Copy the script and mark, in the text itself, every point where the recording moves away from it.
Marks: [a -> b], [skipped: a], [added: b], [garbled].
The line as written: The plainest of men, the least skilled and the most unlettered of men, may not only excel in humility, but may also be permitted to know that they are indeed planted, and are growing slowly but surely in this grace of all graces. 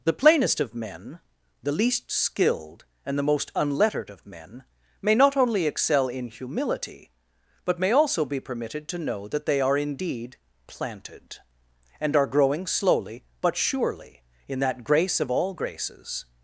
The plainest of men, the least skilled and the most unlettered of men, may not only excel in humility, but may also be permitted to know that they are indeed planted, and are growing slowly but surely in [this -> that] grace of all graces.